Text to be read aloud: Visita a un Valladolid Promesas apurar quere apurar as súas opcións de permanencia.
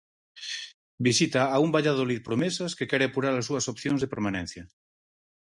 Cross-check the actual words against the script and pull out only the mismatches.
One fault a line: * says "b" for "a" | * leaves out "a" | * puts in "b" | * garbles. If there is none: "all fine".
* says "que" for "apurar"